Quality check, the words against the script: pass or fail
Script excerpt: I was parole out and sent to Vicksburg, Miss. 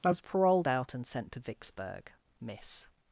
fail